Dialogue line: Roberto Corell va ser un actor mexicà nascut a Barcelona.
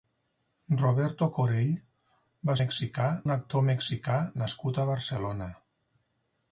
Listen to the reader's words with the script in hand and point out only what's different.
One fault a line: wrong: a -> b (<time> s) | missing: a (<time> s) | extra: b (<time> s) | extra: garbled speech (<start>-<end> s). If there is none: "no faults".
wrong: ser -> mexicà (2.6 s)